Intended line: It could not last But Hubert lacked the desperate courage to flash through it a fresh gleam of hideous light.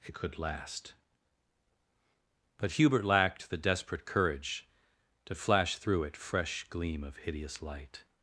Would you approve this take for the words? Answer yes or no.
no